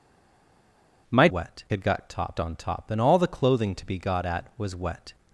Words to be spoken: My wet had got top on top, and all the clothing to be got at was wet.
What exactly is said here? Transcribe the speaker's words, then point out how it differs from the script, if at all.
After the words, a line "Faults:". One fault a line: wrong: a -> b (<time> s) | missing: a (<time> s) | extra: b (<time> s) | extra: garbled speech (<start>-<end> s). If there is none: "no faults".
My wet had got top on top, and all the clothing to be got at was wet.
Faults:
no faults